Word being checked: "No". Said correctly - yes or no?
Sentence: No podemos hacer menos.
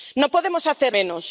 yes